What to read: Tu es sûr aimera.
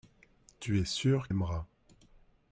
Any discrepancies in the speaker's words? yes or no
no